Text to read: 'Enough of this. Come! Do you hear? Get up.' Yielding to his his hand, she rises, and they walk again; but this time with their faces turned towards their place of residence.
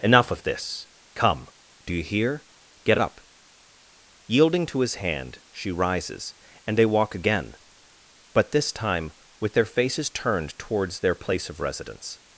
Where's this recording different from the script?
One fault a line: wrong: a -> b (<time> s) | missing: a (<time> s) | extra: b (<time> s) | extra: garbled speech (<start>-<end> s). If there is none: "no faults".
missing: his (4.9 s)